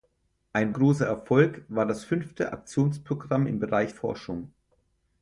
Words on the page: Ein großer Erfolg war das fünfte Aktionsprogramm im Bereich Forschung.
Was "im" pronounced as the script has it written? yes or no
yes